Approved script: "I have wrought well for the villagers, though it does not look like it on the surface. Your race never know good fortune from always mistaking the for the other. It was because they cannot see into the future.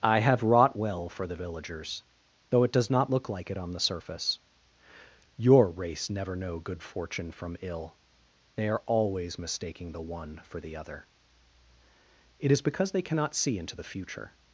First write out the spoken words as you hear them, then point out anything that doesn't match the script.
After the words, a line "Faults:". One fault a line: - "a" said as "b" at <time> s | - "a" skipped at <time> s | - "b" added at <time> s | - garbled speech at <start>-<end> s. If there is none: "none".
"I have wrought well for the villagers, though it does not look like it on the surface. Your race never know good fortune from ill. They are always mistaking the one for the other. It is because they cannot see into the future.
Faults:
- "ill They are" added at 7.6 s
- "one" added at 10.0 s
- "was" said as "is" at 12.5 s